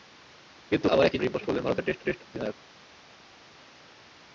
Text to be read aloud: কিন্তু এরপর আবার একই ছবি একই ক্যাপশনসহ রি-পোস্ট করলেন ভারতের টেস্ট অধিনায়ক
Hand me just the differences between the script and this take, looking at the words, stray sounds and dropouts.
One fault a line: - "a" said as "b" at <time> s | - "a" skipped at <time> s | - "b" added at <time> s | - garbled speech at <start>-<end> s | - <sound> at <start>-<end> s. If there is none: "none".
- "এরপর" skipped at 0.9 s
- "ছবি একই ক্যাপশনসহ" skipped at 1.2 s
- "টেস্ট" added at 2.0 s